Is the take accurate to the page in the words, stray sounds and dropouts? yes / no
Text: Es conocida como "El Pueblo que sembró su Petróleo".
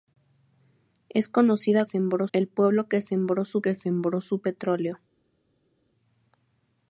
no